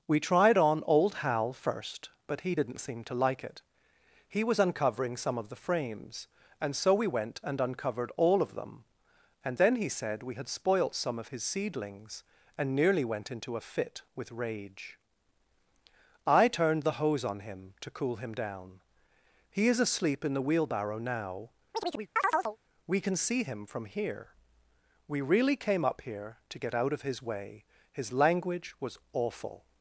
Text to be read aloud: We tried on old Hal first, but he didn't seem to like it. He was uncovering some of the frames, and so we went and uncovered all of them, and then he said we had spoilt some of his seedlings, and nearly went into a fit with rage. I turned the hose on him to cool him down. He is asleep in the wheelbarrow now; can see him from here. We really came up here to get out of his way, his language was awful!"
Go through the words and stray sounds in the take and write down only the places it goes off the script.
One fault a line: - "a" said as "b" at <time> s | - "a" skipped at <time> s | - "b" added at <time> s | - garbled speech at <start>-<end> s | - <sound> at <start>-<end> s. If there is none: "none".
- chirp at 21.7-22.6 s
- "we" added at 22.9 s